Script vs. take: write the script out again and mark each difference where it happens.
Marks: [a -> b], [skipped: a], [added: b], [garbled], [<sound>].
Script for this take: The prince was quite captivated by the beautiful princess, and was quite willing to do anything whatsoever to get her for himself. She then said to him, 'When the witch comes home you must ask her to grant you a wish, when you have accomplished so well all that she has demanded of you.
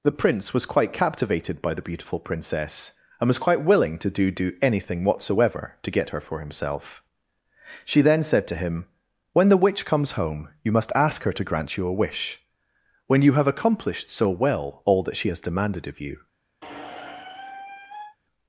The prince was quite captivated by the beautiful princess, and was quite willing to do [added: do] anything whatsoever to get her for himself. She then said to him, 'When the witch comes home you must ask her to grant you a wish, when you have accomplished so well all that she has demanded of you. [squeak]